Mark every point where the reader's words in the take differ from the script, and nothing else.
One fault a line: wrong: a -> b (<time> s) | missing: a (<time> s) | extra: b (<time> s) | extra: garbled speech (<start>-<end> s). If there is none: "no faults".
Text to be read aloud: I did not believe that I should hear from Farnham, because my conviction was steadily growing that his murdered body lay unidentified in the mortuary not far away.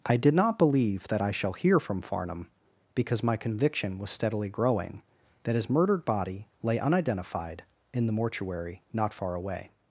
wrong: should -> shall (1.3 s)